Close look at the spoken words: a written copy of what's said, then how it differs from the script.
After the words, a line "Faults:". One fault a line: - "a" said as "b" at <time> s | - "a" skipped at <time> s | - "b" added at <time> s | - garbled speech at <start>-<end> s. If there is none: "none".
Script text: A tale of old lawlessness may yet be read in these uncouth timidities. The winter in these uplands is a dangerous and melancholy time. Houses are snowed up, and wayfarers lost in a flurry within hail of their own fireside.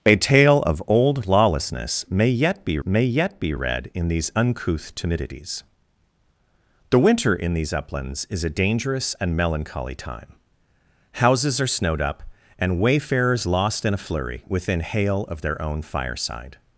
A tale of old lawlessness may yet be may yet be read in these uncouth timidities. The winter in these uplands is a dangerous and melancholy time. Houses are snowed up, and wayfarers lost in a flurry within hail of their own fireside.
Faults:
- "may yet be" added at 2.8 s